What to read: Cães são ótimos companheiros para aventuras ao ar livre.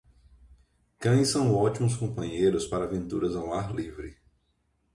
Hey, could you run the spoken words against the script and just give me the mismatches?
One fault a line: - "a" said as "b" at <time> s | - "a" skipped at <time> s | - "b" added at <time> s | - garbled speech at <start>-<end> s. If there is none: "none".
none